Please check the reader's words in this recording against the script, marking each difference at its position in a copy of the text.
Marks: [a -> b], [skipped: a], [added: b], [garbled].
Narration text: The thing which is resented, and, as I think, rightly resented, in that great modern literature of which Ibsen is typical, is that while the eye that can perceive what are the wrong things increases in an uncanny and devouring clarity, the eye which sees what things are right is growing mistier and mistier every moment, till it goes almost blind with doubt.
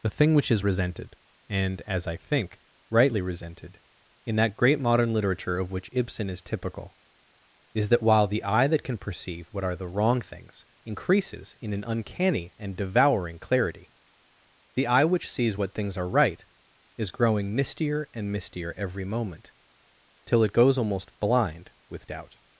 The thing which is resented, and, as I think, rightly resented, in that great modern literature of which Ibsen is typical, is that while the eye that can perceive what are the wrong things increases in an uncanny and devouring clarity, the eye which sees what things are right is growing mistier and mistier every moment, till it goes almost blind with doubt.